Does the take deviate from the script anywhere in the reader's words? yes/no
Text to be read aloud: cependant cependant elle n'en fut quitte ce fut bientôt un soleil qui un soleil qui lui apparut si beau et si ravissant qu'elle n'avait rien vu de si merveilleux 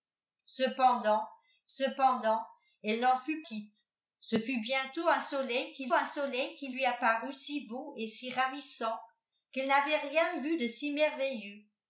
no